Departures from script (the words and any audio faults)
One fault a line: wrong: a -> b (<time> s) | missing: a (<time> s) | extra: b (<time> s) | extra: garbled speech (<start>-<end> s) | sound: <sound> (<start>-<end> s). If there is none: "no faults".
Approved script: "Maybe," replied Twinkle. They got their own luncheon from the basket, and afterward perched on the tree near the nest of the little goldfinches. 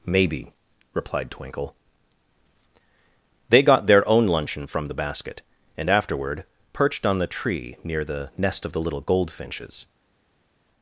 no faults